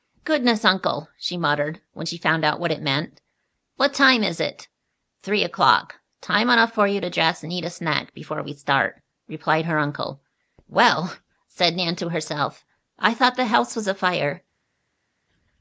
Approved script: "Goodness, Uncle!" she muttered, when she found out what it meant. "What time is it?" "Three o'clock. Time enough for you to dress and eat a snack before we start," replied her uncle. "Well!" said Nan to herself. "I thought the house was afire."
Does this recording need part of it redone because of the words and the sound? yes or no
no